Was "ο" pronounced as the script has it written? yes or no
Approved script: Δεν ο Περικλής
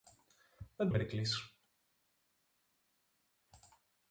yes